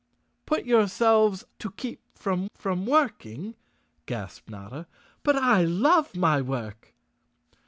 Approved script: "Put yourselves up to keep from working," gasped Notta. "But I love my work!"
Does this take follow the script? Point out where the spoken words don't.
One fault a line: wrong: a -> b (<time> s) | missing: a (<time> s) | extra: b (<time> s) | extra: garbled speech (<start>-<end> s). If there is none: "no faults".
missing: up (1.4 s)
extra: from (2.5 s)